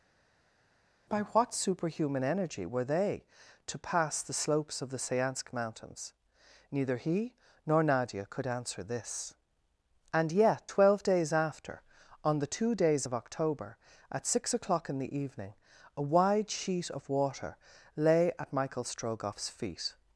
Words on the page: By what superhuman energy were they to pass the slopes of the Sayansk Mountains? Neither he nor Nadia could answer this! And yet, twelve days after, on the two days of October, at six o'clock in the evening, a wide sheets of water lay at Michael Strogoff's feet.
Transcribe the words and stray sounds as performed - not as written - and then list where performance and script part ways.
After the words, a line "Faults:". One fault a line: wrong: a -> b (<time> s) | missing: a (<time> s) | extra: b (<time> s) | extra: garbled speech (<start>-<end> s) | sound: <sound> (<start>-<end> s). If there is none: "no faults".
By what superhuman energy were they to pass the slopes of the Sayansk Mountains? Neither he nor Nadia could answer this! And yet, twelve days after, on the two days of October, at six o'clock in the evening, a wide sheet of water lay at Michael Strogoff's feet.
Faults:
wrong: sheets -> sheet (16.5 s)